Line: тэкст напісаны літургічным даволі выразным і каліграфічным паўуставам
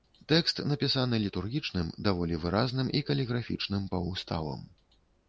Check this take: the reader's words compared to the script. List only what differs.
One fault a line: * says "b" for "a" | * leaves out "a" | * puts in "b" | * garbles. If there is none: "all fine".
all fine